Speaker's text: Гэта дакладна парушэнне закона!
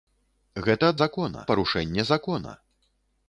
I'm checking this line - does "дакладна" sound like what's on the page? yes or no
no